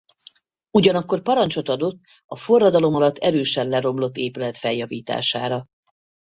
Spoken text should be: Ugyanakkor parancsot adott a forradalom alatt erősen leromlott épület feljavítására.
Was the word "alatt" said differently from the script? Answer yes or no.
no